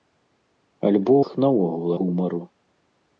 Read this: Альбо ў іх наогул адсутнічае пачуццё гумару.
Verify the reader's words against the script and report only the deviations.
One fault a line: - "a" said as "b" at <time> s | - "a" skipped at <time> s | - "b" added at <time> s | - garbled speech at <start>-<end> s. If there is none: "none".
- "ў" skipped at 1.1 s
- "адсутнічае пачуццё" skipped at 1.9 s